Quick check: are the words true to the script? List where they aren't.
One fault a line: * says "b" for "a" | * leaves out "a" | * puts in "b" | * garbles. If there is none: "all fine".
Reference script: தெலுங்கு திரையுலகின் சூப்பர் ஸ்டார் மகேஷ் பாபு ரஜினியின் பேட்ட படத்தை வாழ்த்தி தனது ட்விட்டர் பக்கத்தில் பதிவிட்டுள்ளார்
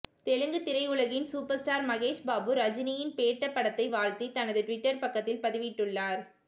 all fine